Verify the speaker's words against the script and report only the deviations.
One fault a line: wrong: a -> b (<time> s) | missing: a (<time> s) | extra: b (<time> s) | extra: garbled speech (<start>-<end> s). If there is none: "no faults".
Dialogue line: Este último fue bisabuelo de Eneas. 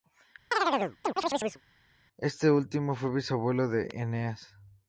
no faults